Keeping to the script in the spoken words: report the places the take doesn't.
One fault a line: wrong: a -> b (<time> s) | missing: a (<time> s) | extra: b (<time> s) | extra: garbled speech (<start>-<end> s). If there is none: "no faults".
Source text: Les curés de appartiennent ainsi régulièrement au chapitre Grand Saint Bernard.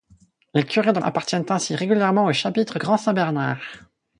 no faults